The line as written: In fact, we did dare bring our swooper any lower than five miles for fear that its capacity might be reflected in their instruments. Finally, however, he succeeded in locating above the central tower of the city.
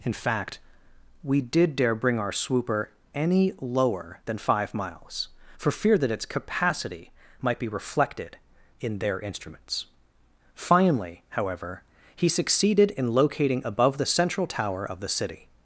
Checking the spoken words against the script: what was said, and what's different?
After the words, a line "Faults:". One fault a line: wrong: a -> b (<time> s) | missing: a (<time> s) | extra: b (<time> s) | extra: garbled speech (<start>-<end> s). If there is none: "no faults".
In fact, we did dare bring our swooper any lower than five miles for fear that its capacity might be reflected in their instruments. Finally, however, he succeeded in locating above the central tower of the city.
Faults:
no faults